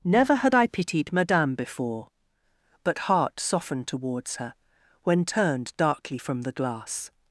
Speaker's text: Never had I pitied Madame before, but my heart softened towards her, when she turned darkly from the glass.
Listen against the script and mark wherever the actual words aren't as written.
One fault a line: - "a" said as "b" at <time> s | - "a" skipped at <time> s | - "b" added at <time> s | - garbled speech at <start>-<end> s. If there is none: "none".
- "my" skipped at 3.0 s
- "she" skipped at 5.3 s